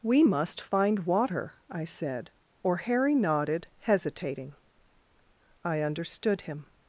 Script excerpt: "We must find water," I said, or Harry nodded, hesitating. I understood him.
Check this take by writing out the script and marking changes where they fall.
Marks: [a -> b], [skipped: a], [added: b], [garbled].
"We must find water," I said, or Harry nodded, hesitating. I understood him.